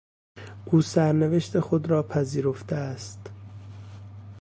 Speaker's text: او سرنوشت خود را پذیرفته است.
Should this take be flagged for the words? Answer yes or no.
no